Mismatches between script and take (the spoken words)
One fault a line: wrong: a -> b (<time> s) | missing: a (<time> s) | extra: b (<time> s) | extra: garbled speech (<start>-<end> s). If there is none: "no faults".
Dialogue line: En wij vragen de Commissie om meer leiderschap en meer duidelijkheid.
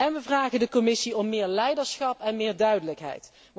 no faults